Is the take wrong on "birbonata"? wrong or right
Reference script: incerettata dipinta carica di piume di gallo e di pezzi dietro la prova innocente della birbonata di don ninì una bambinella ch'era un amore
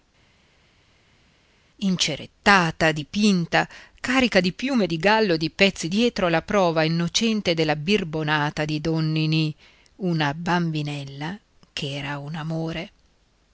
right